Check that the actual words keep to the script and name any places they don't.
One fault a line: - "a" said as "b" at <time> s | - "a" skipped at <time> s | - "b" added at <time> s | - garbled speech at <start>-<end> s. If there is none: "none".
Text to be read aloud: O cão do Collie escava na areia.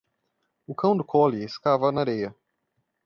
none